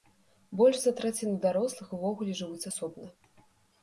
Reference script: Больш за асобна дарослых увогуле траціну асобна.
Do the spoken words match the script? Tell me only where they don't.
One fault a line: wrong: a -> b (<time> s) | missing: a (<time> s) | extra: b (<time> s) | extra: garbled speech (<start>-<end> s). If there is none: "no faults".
wrong: асобна -> траціну (1.0 s)
wrong: траціну -> жывуць (2.4 s)